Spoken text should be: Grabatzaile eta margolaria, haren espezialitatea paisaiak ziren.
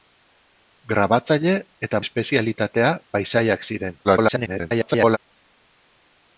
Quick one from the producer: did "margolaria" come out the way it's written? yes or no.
no